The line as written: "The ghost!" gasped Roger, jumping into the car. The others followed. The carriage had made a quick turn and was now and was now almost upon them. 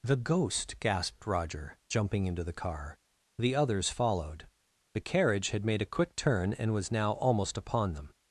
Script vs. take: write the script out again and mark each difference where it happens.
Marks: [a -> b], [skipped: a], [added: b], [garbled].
"The ghost!" gasped Roger, jumping into the car. The others followed. The carriage had made a quick turn and was now [skipped: and was now] almost upon them.